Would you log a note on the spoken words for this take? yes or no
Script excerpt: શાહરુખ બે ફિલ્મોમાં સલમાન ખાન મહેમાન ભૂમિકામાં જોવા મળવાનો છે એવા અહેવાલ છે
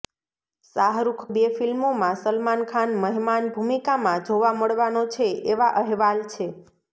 no